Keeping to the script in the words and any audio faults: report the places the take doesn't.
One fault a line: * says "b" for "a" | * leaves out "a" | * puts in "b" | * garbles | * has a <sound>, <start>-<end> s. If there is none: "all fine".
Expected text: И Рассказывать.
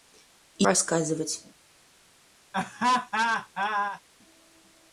* has a laugh, 2.5-4.0 s